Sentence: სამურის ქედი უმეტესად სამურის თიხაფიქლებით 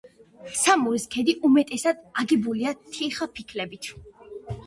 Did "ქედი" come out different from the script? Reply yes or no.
no